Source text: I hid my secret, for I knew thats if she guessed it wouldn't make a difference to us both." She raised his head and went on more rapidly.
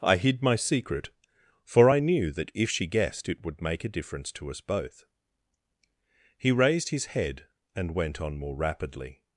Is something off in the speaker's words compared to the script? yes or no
yes